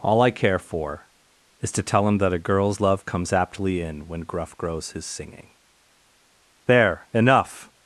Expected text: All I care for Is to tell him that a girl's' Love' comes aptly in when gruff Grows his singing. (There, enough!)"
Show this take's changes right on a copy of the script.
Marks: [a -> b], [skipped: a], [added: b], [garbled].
All I care for Is to tell him that a girl's' Love' comes aptly in when gruff Grows his singing. (There, enough!)"